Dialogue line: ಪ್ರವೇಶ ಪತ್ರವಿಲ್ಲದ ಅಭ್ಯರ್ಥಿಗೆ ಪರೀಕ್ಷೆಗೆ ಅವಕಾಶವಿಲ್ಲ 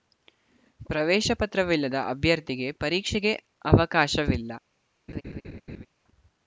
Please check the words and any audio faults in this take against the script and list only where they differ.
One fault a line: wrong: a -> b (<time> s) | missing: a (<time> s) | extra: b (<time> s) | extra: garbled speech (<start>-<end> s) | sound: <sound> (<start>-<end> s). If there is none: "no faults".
sound: laugh (5.1-5.9 s)